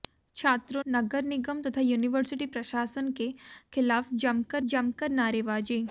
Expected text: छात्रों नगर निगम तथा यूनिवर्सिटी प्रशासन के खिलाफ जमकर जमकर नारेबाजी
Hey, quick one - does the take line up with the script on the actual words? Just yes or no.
yes